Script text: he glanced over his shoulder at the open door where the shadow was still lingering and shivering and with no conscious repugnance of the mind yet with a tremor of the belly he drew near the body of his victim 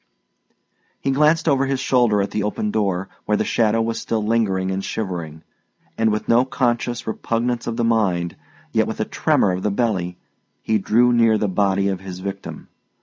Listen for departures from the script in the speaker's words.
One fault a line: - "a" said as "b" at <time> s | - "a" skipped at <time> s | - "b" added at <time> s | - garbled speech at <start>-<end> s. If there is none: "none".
none